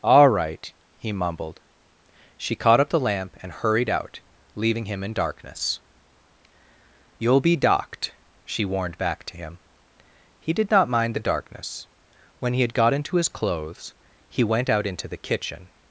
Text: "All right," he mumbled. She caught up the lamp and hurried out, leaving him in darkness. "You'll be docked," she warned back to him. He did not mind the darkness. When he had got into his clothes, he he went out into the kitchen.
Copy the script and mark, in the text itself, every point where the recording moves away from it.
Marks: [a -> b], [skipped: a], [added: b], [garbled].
"All right," he mumbled. She caught up the lamp and hurried out, leaving him in darkness. "You'll be docked," she warned back to him. He did not mind the darkness. When he had got into his clothes, he [skipped: he] went out into the kitchen.